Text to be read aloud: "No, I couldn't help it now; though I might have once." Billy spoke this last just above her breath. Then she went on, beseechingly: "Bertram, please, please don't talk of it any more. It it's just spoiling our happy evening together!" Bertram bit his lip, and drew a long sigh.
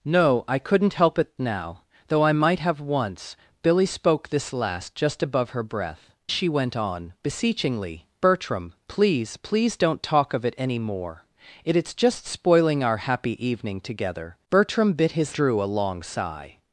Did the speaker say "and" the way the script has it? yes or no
no